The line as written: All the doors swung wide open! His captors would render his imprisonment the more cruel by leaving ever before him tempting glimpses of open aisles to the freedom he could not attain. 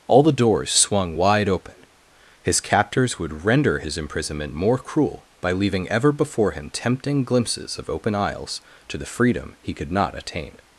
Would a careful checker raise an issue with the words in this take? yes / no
yes